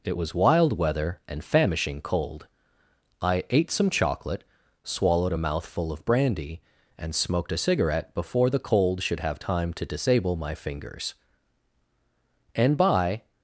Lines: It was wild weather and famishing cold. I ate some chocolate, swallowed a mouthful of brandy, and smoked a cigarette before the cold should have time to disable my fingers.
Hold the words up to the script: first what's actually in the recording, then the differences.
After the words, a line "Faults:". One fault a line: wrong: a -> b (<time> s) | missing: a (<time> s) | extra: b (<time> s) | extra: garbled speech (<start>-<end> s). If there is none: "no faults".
It was wild weather and famishing cold. I ate some chocolate, swallowed a mouthful of brandy, and smoked a cigarette before the cold should have time to disable my fingers. And by
Faults:
extra: And by (12.5 s)